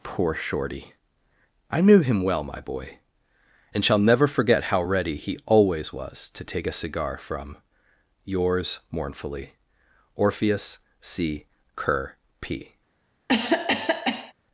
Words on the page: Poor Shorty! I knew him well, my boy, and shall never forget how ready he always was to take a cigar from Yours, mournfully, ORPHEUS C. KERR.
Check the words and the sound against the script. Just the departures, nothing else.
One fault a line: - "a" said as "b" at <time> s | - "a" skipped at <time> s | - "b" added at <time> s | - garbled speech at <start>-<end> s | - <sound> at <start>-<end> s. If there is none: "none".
- "P" added at 12.4 s
- cough at 13.3-14.3 s